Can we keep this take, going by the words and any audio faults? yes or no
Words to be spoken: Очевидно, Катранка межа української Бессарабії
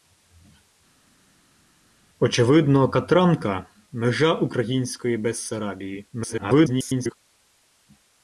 no